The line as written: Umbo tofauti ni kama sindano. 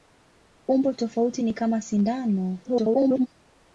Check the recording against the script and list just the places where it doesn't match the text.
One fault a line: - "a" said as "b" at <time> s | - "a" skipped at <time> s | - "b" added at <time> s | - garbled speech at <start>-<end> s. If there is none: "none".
- garbled speech at 2.6-3.3 s